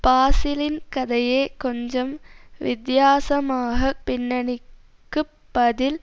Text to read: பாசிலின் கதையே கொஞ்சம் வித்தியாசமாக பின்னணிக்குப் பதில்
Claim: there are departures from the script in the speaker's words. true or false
false